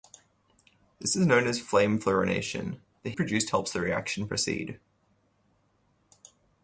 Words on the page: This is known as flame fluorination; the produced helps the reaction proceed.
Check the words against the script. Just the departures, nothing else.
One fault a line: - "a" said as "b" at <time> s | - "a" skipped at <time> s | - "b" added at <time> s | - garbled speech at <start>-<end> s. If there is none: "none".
none